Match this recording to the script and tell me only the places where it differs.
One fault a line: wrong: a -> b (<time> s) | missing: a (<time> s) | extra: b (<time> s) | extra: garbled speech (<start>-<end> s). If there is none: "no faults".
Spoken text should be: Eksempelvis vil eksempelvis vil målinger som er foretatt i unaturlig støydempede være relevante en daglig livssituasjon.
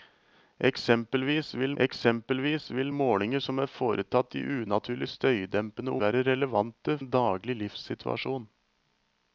no faults